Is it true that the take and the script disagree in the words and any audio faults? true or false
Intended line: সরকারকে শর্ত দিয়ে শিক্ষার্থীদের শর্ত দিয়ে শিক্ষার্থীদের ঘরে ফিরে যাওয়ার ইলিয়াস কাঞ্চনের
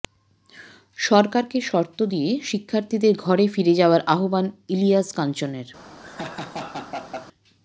true